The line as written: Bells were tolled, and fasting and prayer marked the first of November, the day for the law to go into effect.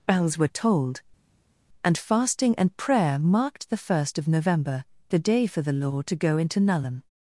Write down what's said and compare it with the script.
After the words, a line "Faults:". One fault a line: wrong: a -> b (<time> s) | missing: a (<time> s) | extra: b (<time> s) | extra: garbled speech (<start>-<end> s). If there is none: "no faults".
Bells were tolled, and fasting and prayer marked the first of November, the day for the law to go into nullum.
Faults:
wrong: effect -> nullum (6.6 s)